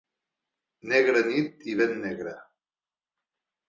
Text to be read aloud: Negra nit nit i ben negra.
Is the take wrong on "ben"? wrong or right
right